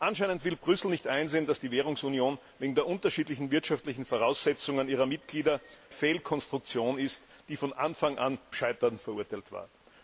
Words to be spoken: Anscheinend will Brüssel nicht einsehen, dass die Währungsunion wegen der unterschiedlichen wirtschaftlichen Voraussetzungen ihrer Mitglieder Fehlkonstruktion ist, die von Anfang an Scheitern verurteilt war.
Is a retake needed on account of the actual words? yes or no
no